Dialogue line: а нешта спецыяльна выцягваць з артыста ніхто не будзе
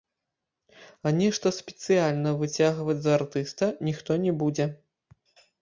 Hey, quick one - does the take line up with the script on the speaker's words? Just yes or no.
yes